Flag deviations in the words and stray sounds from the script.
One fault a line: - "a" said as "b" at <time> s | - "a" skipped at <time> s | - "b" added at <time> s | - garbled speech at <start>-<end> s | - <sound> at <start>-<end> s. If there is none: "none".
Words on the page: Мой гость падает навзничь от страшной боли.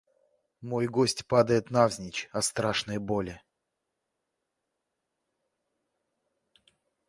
none